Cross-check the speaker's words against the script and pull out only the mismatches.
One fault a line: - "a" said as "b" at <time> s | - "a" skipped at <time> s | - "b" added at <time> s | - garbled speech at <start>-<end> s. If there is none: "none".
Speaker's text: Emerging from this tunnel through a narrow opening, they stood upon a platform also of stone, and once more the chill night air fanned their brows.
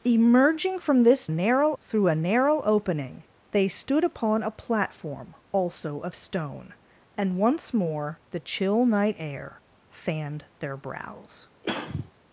- "tunnel" said as "narrow" at 1.3 s